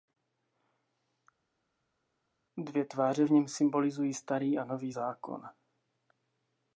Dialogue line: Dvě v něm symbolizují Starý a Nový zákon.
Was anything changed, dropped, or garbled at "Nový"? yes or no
no